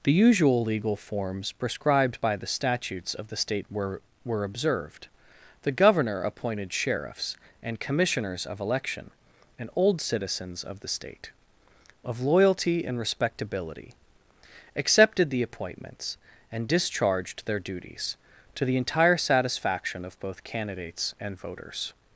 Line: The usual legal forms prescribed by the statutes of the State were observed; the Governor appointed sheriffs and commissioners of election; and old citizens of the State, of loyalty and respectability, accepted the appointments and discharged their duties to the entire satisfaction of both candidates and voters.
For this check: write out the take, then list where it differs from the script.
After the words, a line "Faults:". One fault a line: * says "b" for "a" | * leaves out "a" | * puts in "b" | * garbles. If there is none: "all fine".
The usual legal forms prescribed by the statutes of the State were were observed; the Governor appointed sheriffs and commissioners of election; and old citizens of the State, of loyalty and respectability, accepted the appointments and discharged their duties to the entire satisfaction of both candidates and voters.
Faults:
* puts in "were"